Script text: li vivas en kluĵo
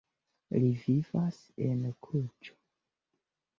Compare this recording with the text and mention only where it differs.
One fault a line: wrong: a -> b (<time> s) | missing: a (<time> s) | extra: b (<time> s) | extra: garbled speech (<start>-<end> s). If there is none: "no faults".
no faults